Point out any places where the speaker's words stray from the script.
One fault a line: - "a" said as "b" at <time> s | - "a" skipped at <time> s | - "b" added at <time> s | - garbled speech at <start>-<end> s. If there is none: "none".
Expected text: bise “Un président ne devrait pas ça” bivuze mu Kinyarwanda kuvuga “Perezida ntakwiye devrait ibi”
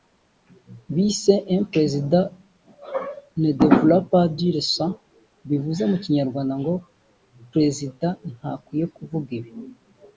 - "dire" added at 4.4 s
- "kuvuga" said as "ngo" at 6.6 s
- "devrait" said as "kuvuga" at 8.9 s